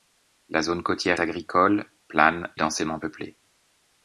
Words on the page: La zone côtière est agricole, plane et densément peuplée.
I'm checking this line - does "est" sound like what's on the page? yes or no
no